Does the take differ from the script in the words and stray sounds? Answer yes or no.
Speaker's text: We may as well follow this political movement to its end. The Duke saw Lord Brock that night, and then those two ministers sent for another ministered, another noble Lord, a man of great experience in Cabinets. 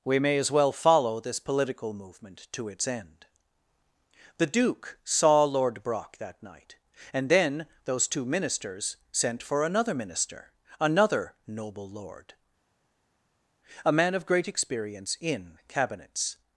yes